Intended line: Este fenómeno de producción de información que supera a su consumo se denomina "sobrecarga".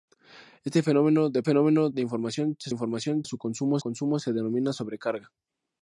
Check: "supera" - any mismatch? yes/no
yes